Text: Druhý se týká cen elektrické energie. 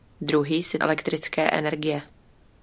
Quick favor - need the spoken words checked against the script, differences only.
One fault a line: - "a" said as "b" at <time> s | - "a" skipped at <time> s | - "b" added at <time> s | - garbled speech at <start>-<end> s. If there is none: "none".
- "týká cen" skipped at 0.8 s